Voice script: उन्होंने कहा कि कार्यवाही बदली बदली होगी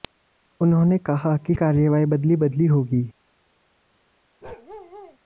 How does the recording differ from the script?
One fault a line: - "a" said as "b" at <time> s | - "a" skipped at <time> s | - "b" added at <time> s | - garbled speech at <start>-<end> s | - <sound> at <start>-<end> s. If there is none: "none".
- bark at 4.4-5.2 s